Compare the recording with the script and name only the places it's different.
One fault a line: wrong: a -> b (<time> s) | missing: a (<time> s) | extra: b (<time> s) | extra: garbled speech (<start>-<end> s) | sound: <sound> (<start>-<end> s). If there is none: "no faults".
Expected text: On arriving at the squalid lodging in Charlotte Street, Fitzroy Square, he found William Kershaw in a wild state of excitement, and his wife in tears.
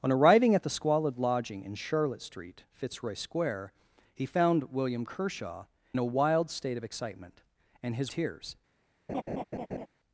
missing: in (5.7 s)
missing: wife in (8.1 s)
sound: laugh (9.1-9.9 s)